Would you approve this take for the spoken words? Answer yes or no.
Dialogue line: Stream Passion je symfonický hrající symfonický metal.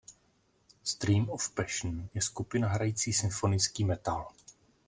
no